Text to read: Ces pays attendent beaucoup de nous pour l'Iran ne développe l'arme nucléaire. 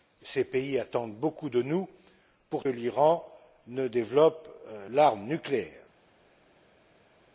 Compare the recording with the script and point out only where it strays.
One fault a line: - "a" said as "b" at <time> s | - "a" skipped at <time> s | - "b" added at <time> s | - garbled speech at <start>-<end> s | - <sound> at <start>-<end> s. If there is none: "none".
none